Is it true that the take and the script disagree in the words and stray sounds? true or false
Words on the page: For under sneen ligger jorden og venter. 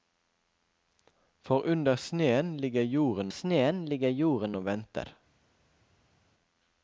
true